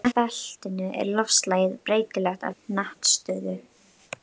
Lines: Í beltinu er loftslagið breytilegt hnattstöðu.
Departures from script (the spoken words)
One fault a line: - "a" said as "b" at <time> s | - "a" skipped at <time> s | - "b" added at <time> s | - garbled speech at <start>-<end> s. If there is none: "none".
none